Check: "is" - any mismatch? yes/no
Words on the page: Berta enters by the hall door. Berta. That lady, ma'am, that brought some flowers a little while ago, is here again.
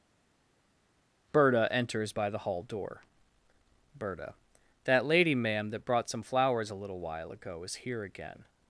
no